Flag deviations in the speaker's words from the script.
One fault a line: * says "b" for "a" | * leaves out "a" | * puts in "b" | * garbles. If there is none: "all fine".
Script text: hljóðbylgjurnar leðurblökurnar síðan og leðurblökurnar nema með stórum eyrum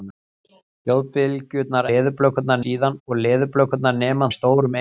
all fine